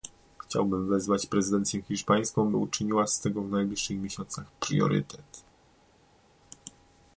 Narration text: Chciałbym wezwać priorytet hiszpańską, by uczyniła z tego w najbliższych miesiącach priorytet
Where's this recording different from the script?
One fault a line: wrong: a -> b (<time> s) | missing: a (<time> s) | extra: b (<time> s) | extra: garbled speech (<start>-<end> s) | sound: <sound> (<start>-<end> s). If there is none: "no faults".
wrong: priorytet -> prezydencję (1.2 s)